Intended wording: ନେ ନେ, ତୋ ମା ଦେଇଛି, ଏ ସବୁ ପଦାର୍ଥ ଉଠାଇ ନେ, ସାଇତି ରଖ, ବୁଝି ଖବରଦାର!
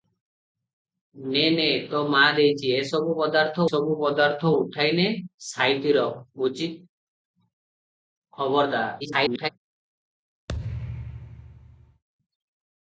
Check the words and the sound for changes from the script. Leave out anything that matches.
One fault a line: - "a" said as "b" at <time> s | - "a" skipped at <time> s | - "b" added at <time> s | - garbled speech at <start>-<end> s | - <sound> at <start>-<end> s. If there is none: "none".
- "ସବୁ ପଦାର୍ଥ" added at 3.7 s
- garbled speech at 9.0-9.5 s
- thud at 10.5-12.0 s